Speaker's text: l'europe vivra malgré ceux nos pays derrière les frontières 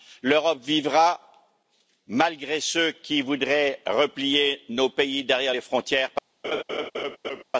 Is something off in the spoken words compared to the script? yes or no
yes